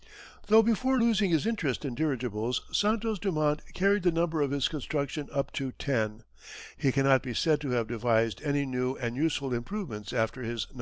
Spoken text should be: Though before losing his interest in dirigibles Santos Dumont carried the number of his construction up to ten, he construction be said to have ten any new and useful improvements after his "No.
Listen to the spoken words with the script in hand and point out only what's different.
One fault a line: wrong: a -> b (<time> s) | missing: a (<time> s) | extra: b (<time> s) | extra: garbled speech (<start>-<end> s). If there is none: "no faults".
wrong: construction -> cannot (6.9 s)
wrong: ten -> devised (7.9 s)